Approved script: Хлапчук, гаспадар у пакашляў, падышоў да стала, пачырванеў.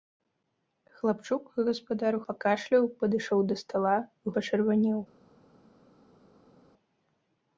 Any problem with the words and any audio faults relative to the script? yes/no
no